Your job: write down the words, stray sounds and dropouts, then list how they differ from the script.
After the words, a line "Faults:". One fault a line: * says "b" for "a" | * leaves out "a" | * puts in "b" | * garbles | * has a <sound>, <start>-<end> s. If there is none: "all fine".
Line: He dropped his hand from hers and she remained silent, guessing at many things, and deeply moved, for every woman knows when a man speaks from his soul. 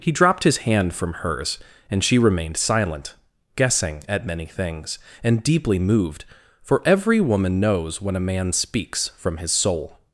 He dropped his hand from hers and she remained silent, guessing at many things, and deeply moved, for every woman knows when a man speaks from his soul.
Faults:
all fine